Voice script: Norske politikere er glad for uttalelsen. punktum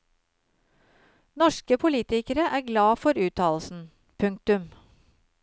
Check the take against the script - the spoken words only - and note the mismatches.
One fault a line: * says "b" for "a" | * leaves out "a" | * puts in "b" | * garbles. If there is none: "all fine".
all fine